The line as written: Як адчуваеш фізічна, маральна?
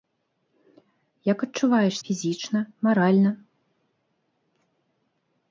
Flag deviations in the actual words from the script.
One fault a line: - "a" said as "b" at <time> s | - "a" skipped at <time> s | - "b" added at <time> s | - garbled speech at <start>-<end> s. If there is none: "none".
none